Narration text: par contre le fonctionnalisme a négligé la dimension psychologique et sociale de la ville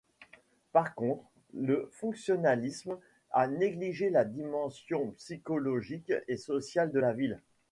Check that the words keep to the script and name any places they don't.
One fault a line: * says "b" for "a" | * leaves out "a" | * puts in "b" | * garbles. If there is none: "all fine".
all fine